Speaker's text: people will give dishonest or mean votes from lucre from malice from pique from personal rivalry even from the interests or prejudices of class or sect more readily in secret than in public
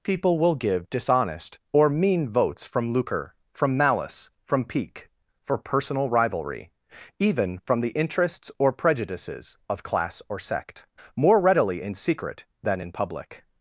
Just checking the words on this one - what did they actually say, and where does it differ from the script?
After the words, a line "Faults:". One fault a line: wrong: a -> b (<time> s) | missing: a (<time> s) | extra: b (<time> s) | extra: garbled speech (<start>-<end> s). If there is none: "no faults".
people will give dishonest or mean votes from lucre from malice from pique for personal rivalry even from the interests or prejudices of class or sect more readily in secret than in public
Faults:
wrong: from -> for (5.4 s)